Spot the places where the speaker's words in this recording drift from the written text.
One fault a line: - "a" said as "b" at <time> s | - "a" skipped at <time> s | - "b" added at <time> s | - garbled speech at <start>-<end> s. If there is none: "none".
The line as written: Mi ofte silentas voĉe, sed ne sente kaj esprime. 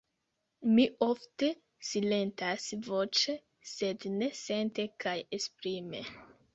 none